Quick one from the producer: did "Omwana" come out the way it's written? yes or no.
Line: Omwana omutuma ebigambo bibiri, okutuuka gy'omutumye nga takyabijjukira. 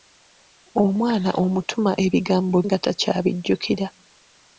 yes